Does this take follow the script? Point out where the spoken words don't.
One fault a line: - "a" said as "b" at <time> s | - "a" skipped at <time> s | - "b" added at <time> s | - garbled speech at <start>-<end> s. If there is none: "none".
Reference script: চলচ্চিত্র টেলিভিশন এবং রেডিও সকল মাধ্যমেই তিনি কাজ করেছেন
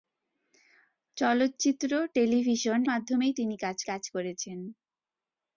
- "এবং রেডিও সকল" skipped at 2.8 s
- "কাজ" added at 3.8 s